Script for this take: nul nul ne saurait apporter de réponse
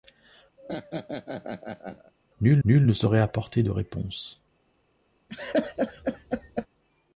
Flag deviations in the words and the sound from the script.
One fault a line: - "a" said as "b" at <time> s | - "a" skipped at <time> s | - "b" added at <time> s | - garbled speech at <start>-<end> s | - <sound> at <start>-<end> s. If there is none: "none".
- laugh at 0.6-2.1 s
- laugh at 5.3-6.7 s